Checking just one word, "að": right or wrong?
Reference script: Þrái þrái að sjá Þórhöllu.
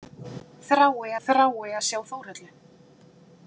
right